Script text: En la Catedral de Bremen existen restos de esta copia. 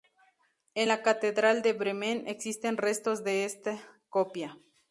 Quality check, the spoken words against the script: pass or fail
pass